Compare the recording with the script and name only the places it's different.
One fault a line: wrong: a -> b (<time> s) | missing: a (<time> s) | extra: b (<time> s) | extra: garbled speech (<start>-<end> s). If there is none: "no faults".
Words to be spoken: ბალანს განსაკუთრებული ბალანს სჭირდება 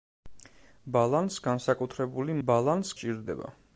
no faults